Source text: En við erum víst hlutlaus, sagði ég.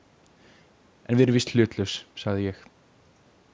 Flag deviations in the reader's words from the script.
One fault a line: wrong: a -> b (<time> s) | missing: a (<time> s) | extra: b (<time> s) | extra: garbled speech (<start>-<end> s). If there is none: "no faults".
no faults